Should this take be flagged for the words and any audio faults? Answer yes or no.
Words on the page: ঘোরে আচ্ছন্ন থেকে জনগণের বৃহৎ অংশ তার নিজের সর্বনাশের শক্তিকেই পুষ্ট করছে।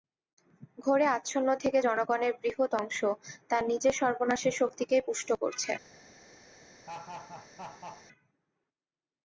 yes